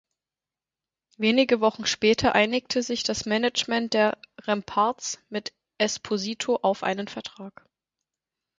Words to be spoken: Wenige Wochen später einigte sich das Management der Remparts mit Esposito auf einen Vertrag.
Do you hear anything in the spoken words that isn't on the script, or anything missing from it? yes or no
no